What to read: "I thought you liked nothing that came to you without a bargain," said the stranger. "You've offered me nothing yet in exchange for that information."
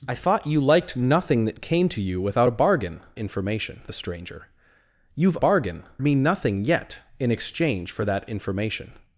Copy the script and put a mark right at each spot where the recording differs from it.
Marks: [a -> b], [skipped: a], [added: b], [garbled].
"I thought you liked nothing that came to you without a bargain," [said -> information] the stranger. "You've [offered -> bargain] me nothing yet in exchange for that information."